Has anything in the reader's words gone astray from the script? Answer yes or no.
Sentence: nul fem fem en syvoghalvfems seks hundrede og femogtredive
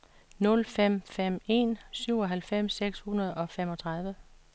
no